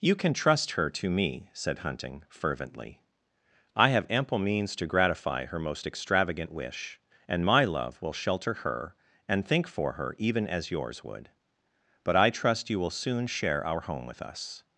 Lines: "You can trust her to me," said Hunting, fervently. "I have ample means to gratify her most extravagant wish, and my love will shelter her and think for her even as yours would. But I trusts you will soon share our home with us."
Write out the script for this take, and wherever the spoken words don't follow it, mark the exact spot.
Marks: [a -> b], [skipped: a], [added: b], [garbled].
"You can trust her to me," said Hunting, fervently. "I have ample means to gratify her most extravagant wish, and my love will shelter her and think for her even as yours would. But I [trusts -> trust] you will soon share our home with us."